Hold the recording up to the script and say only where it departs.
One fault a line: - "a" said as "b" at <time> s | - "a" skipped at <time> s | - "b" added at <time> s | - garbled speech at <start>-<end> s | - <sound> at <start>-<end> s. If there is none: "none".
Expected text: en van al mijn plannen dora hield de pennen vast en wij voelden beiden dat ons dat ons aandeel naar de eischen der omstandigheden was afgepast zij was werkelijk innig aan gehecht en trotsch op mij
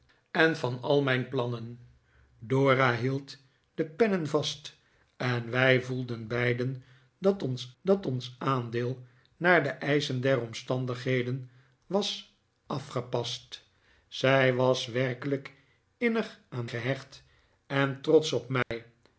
- dropout at 18.6-18.7 s